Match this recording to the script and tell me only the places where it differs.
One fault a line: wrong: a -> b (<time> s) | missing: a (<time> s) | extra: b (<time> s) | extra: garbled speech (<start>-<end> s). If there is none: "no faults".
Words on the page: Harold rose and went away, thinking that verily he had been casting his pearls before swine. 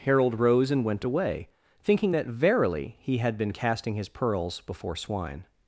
no faults